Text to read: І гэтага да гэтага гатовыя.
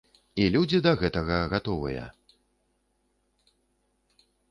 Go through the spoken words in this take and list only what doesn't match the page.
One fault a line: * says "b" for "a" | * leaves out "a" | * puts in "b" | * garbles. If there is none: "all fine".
* says "людзі" for "гэтага"